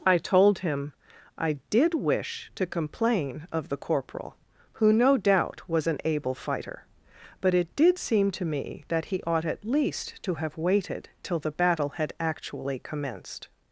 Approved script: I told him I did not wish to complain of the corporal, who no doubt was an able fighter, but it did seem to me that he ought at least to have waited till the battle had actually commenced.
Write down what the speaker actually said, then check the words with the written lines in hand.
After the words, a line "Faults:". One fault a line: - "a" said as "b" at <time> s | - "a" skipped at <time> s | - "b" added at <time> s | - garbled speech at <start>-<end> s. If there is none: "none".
I told him I did wish to complain of the corporal, who no doubt was an able fighter, but it did seem to me that he ought at least to have waited till the battle had actually commenced.
Faults:
- "not" skipped at 1.9 s